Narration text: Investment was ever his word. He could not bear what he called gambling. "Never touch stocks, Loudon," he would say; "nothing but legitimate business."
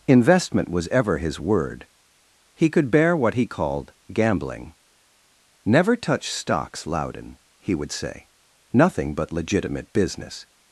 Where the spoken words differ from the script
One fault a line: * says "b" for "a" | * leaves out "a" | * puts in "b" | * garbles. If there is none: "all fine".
* leaves out "not"